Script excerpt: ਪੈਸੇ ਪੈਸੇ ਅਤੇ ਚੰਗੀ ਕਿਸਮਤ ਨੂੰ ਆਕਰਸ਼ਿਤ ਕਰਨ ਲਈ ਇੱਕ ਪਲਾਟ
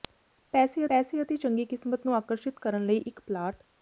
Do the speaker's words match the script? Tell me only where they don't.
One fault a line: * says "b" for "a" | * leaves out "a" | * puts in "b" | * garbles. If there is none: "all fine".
all fine